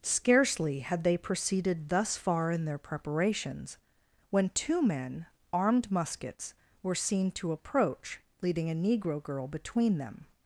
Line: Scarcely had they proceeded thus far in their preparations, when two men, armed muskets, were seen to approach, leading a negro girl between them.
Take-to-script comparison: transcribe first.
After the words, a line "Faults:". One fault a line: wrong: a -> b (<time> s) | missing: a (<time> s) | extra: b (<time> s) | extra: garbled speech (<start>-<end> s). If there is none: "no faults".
Scarcely had they proceeded thus far in their preparations, when two men, armed muskets, were seen to approach, leading a negro girl between them.
Faults:
no faults